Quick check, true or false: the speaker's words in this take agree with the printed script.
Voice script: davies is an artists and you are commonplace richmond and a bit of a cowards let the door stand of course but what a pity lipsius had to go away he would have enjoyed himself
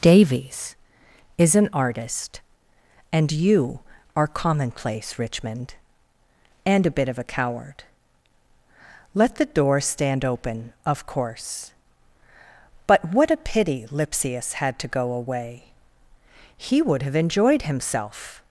false